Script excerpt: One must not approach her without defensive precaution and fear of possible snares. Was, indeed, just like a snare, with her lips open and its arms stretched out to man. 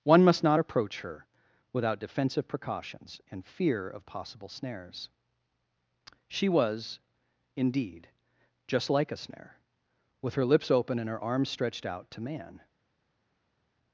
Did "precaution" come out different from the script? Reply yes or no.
yes